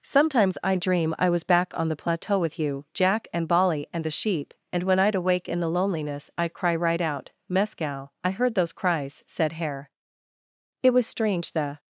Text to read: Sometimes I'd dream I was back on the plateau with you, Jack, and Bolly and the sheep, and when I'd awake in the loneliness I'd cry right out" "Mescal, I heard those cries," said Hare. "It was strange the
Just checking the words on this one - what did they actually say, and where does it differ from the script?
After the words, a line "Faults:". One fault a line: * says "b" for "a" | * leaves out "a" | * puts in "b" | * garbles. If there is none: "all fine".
Sometimes I'd dream I was back on the plateau with you, Jack, and Bolly and the sheep, and when I'd awake in the loneliness I'd cry right out" "Mescal, I heard those cries," said Hare. "It was strange the
Faults:
all fine